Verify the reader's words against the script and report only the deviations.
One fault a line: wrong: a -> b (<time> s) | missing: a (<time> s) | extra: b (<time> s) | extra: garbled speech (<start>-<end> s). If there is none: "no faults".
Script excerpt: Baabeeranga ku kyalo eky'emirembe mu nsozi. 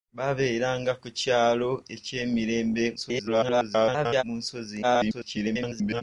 extra: garbled speech (3.0-4.2 s)
extra: garbled speech (4.8-6.0 s)